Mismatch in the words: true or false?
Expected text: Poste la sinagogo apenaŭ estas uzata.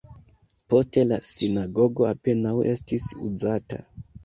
true